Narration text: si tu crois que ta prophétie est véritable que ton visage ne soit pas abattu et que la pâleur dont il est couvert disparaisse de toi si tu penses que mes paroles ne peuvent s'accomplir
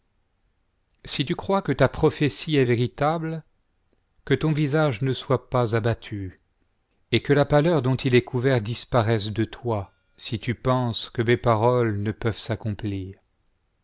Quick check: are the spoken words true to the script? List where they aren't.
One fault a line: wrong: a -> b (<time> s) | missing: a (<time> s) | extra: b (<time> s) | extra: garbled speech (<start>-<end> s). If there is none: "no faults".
no faults